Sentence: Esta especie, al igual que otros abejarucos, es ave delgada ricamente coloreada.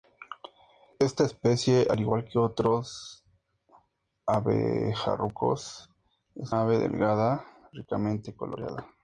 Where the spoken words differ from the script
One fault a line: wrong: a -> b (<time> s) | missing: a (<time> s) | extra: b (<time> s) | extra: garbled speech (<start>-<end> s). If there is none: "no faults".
no faults